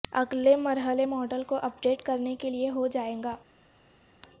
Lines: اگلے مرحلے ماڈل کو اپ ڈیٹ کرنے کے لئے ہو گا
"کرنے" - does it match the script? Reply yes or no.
yes